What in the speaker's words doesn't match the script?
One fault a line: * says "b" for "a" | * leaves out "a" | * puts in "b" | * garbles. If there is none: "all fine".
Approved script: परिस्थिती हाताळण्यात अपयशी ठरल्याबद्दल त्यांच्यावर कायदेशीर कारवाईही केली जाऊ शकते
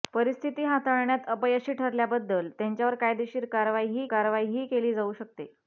* puts in "कारवाईही"